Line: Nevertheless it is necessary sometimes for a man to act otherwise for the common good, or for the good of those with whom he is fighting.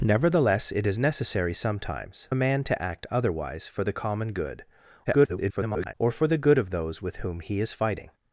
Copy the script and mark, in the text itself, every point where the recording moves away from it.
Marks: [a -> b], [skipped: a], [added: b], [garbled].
Nevertheless it is necessary sometimes [skipped: for] a man to act otherwise for the common good, [garbled] or for the good of those with whom he is fighting.